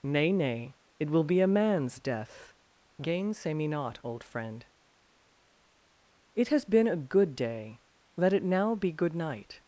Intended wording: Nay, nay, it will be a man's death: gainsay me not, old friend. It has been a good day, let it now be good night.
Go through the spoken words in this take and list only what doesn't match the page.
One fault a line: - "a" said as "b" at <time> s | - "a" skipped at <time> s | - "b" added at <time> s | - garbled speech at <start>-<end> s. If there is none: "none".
none